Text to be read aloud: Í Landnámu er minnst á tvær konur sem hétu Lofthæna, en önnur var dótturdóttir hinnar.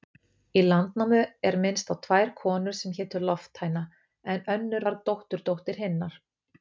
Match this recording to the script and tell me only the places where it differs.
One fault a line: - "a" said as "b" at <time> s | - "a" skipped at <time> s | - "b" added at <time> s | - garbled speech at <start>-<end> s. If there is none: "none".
none